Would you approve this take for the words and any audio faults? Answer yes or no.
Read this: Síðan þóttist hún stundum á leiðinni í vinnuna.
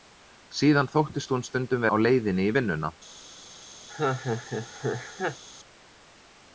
no